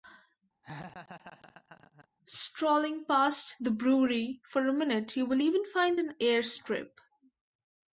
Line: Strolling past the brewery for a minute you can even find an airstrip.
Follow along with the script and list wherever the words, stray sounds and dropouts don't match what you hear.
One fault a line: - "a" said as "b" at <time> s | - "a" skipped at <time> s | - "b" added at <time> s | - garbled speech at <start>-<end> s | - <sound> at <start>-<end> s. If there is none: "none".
- laugh at 0.6-2.1 s
- "can" said as "will" at 5.3 s